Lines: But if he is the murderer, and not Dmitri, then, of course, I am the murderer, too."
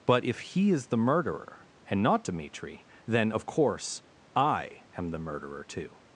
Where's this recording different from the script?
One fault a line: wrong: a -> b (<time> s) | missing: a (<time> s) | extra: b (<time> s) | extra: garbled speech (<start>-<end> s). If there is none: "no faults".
no faults